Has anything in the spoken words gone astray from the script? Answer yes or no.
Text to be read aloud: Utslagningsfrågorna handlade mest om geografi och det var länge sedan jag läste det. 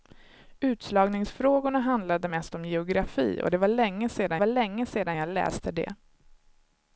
yes